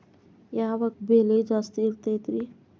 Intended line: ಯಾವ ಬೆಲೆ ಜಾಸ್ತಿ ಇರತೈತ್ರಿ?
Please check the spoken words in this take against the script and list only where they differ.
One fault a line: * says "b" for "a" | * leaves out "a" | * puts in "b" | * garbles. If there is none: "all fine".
all fine